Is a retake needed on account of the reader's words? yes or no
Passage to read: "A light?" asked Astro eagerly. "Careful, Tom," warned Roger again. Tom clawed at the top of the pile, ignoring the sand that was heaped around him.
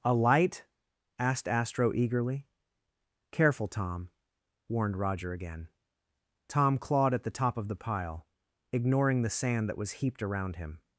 no